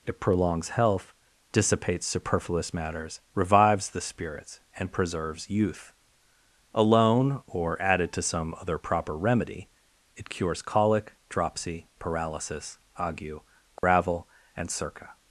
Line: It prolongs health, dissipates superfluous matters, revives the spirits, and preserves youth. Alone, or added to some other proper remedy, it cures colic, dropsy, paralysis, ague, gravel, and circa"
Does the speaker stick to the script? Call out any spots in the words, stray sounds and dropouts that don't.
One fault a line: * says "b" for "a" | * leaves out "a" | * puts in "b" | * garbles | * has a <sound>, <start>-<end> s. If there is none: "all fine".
* has a dropout, 13.8-13.8 s